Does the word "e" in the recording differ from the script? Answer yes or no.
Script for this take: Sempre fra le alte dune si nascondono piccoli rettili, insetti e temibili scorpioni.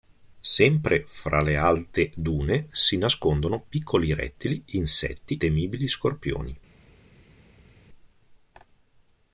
yes